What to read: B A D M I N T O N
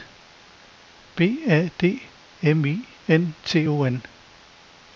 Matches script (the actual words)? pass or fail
pass